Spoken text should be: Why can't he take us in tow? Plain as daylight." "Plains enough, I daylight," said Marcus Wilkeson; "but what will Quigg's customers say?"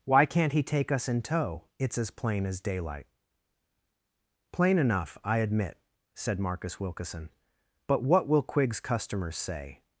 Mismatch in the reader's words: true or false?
true